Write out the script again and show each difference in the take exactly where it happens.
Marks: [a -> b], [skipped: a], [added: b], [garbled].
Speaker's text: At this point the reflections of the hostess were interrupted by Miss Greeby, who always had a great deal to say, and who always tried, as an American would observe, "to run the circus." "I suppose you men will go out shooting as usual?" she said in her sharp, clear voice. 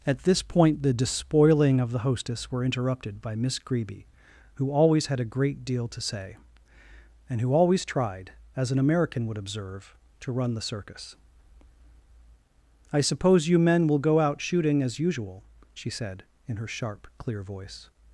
At this point the [reflections -> despoiling] of the hostess were interrupted by Miss Greeby, who always had a great deal to say, and who always tried, as an American would observe, "to run the circus." "I suppose you men will go out shooting as usual?" she said in her sharp, clear voice.